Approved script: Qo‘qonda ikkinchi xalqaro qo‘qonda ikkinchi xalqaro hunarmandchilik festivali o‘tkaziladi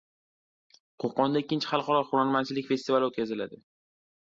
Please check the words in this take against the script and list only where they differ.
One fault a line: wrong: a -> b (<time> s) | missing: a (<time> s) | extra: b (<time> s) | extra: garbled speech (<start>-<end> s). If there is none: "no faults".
missing: qo‘qonda ikkinchi xalqaro (2.0 s)